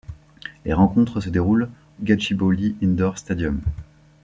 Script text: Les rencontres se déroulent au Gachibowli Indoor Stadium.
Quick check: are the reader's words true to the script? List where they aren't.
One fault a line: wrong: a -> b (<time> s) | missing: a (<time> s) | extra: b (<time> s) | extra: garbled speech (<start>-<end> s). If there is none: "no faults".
missing: au (1.7 s)